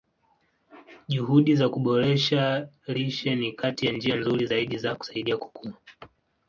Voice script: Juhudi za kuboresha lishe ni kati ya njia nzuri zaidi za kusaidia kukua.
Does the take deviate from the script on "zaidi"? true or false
false